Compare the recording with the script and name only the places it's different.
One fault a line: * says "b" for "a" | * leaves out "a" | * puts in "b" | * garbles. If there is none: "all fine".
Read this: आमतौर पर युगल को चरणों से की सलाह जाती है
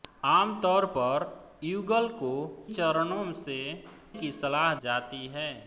all fine